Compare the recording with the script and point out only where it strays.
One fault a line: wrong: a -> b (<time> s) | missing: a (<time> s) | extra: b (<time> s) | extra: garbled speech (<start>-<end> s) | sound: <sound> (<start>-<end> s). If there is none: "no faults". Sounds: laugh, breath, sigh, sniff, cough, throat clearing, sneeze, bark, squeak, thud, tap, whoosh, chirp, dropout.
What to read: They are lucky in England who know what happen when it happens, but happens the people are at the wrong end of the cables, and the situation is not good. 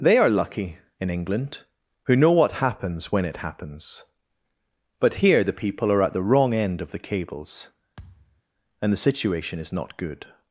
wrong: happen -> happens (2.5 s)
wrong: happens -> here (5.2 s)
sound: thud (8.0-8.4 s)